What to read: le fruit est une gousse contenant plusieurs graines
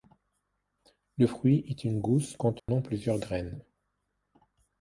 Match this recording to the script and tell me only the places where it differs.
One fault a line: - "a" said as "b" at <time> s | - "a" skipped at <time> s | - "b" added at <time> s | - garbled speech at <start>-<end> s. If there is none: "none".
none